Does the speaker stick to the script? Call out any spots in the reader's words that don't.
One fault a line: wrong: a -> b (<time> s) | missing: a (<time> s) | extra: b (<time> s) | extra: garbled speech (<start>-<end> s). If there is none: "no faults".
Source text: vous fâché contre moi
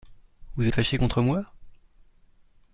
extra: êtes (0.6 s)